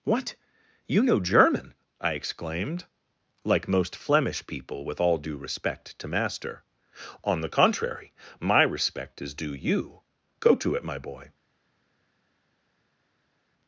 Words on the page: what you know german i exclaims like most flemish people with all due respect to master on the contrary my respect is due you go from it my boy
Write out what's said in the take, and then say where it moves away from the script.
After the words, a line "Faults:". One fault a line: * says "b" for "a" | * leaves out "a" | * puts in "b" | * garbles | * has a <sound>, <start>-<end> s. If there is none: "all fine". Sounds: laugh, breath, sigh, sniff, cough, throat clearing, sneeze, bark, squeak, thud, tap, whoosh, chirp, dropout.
what you know german i exclaimed like most flemish people with all due respect to master on the contrary my respect is due you go to it my boy
Faults:
* says "exclaimed" for "exclaims"
* says "to" for "from"